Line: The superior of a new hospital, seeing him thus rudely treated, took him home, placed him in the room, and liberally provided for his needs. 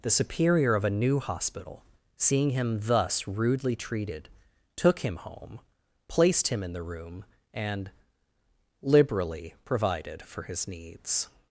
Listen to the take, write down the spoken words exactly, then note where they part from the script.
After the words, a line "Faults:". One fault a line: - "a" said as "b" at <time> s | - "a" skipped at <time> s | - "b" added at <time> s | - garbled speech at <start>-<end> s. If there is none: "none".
The superior of a new hospital, seeing him thus rudely treated, took him home, placed him in the room, and liberally provided for his needs.
Faults:
none